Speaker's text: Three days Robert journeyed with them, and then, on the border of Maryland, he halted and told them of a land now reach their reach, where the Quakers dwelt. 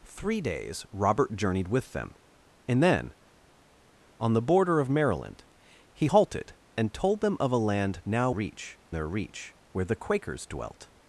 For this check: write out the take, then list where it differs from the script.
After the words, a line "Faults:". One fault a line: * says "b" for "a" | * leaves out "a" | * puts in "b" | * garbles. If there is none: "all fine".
Three days Robert journeyed with them, and then, on the border of Maryland, he halted and told them of a land now reach their reach, where the Quakers dwelt.
Faults:
all fine